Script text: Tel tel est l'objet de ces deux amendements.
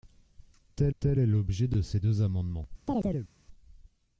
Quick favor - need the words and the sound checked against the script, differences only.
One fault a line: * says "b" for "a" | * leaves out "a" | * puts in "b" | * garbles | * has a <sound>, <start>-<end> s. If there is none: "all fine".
* has a chirp, 2.9-3.3 s